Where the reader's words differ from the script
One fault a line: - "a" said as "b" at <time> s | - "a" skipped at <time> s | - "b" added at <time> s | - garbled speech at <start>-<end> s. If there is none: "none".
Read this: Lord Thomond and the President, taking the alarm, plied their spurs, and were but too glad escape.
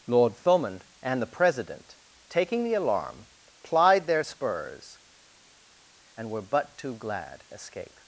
none